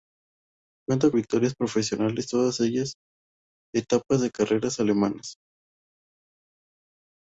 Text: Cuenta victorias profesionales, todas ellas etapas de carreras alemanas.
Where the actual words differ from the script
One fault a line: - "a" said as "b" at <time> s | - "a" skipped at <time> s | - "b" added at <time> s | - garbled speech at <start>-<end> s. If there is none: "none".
none